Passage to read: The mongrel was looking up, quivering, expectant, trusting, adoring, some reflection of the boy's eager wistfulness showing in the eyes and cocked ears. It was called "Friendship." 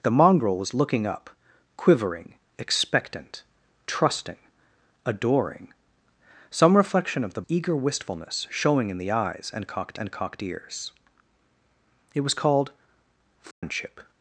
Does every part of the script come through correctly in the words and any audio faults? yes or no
no